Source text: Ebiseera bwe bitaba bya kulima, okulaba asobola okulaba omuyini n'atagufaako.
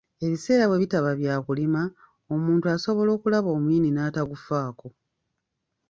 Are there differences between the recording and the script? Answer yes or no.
yes